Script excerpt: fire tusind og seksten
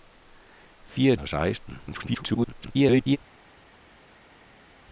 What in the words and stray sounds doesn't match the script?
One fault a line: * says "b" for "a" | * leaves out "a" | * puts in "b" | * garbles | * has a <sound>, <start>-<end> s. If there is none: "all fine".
* leaves out "tusind"
* garbles